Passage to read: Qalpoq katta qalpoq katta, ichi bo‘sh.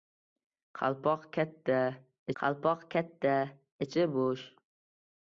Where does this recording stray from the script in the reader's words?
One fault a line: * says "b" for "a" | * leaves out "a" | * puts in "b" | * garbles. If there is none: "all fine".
all fine